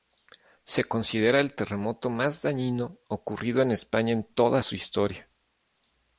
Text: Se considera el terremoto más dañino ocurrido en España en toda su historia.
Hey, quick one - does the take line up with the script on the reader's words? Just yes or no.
yes